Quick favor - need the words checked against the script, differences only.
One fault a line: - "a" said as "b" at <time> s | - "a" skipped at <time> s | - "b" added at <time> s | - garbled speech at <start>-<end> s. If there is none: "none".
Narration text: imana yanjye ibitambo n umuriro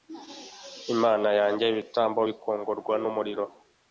- "bikongorwa" added at 2.3 s